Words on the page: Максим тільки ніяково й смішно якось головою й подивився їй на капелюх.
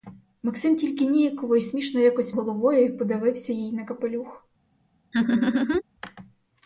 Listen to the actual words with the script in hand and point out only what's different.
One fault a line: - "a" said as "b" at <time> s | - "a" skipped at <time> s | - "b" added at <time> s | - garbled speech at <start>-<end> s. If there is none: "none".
none